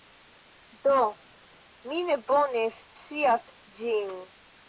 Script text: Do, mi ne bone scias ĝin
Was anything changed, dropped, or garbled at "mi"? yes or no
no